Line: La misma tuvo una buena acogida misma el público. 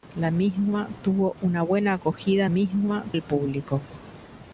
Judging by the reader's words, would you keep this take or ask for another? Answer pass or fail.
pass